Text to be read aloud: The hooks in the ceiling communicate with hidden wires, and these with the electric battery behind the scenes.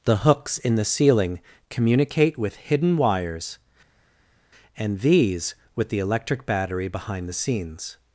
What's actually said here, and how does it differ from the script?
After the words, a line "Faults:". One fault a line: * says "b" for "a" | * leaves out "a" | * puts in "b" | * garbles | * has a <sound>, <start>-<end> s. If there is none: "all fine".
The hooks in the ceiling communicate with hidden wires, and these with the electric battery behind the scenes.
Faults:
all fine